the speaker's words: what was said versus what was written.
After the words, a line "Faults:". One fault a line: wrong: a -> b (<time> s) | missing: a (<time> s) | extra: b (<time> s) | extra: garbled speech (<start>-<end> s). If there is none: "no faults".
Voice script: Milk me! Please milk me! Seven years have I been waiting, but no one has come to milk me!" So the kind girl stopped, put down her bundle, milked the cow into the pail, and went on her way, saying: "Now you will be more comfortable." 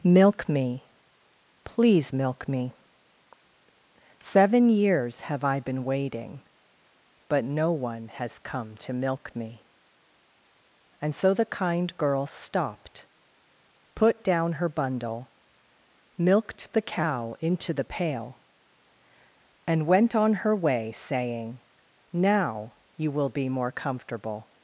Milk me! Please milk me! Seven years have I been waiting, but no one has come to milk me!" and So the kind girl stopped, put down her bundle, milked the cow into the pail, and went on her way, saying: "Now you will be more comfortable."
Faults:
extra: and (11.0 s)